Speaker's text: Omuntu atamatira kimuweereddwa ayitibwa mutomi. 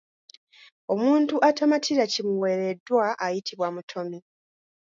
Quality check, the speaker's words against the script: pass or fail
pass